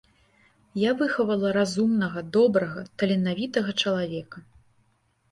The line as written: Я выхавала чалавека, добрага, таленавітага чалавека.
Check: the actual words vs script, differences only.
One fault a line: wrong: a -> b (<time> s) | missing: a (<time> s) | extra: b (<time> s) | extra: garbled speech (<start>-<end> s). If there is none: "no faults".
wrong: чалавека -> разумнага (1.6 s)